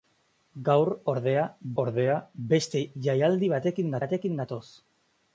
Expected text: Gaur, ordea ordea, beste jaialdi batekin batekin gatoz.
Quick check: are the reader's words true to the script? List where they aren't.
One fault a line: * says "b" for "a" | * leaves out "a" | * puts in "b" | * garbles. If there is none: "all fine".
all fine